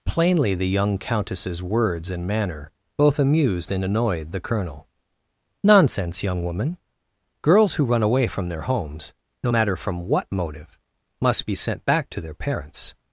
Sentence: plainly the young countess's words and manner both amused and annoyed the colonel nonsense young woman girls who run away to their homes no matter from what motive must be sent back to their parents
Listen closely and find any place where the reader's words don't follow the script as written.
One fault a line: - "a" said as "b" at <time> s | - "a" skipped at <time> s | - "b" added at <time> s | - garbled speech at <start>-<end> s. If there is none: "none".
- "to" said as "from" at 8.3 s